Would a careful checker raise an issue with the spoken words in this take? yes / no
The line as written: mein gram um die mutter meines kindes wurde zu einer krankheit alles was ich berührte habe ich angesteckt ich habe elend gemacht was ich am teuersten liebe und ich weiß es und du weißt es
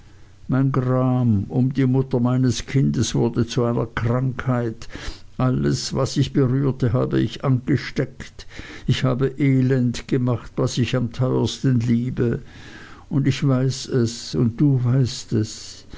no